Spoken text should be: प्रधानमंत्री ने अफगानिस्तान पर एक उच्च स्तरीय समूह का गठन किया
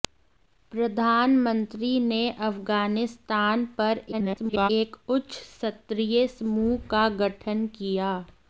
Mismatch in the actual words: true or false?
true